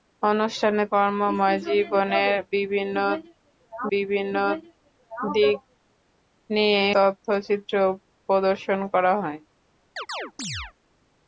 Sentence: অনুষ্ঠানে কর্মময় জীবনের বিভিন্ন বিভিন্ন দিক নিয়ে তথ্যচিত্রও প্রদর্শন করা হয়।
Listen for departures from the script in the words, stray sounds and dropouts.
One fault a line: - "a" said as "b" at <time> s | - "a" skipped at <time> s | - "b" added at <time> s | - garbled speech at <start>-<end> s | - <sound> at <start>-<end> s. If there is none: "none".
- chirp at 10.0-10.7 s